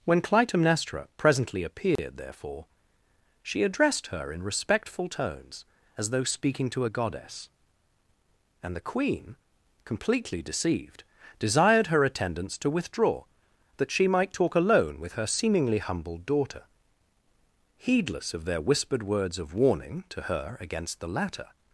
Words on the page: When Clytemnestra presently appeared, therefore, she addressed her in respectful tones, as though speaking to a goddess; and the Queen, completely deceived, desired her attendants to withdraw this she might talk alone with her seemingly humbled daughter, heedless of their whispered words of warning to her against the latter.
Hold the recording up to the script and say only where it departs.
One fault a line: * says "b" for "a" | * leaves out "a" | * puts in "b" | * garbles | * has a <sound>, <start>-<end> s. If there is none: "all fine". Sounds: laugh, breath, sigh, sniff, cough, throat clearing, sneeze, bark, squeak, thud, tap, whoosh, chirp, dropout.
* has a dropout, 2.0-2.0 s
* says "that" for "this"